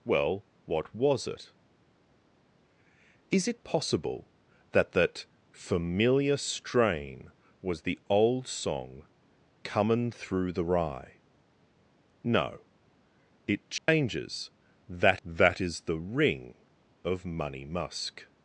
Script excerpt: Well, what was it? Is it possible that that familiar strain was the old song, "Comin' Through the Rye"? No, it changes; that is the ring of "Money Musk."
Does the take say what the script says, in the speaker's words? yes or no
no